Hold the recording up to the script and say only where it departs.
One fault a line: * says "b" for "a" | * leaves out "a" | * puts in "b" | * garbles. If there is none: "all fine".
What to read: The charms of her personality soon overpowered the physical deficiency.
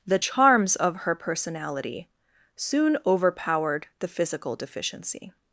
all fine